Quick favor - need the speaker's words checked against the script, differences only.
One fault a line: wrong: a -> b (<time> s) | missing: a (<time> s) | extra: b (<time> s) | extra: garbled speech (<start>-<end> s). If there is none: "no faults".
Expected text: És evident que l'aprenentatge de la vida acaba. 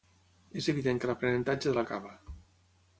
missing: vida (1.9 s)